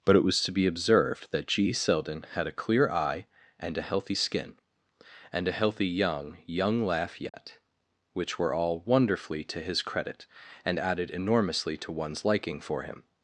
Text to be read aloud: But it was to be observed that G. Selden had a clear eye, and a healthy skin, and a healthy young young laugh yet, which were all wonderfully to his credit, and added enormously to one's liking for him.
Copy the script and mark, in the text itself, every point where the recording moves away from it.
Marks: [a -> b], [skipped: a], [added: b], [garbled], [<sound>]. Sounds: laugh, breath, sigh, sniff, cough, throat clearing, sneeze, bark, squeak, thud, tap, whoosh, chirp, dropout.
But it was to be observed that G. Selden had a clear eye, and a healthy skin, and a healthy young young laugh yet, [dropout] which were all wonderfully to his credit, and added enormously to one's liking for him.